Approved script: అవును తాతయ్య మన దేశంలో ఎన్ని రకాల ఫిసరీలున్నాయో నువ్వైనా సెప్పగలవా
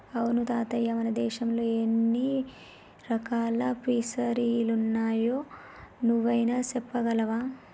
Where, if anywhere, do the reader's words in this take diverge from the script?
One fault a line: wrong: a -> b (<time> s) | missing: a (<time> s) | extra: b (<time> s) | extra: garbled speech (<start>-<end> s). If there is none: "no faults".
no faults